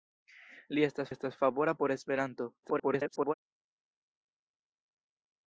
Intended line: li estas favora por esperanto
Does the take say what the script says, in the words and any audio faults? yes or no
no